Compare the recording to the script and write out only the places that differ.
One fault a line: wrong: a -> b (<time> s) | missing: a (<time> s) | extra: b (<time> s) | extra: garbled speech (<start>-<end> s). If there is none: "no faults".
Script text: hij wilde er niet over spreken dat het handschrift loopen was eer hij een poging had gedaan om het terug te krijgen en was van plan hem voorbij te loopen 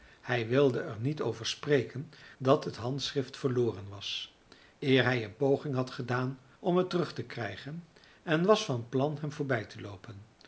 wrong: loopen -> verloren (3.4 s)